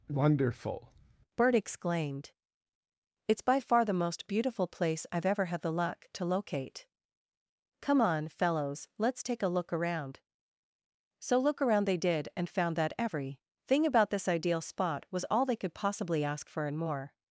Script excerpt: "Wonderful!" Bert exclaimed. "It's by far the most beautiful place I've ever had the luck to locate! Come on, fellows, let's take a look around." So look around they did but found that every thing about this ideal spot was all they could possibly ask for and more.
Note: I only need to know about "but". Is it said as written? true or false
false